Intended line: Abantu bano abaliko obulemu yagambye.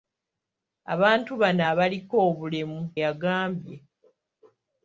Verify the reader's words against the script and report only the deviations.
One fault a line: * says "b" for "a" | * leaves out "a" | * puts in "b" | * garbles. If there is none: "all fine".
all fine